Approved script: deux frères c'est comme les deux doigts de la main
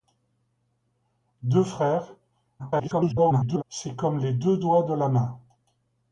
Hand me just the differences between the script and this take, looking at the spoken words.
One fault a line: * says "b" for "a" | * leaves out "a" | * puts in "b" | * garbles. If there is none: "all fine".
* garbles